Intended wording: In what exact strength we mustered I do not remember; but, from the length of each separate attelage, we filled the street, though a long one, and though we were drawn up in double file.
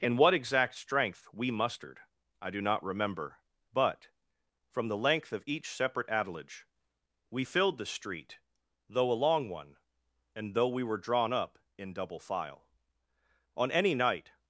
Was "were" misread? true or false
false